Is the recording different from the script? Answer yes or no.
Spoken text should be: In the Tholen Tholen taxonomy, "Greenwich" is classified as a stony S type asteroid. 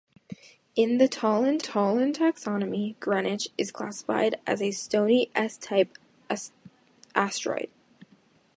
no